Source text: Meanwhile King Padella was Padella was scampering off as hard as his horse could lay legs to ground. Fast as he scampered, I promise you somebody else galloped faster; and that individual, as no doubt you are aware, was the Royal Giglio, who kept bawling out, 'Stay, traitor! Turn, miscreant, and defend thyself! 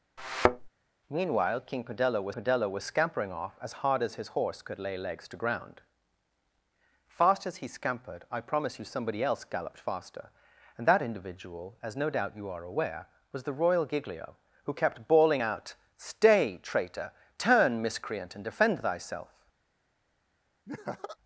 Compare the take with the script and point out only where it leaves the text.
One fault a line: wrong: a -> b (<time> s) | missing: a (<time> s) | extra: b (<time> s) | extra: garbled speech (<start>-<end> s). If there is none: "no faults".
no faults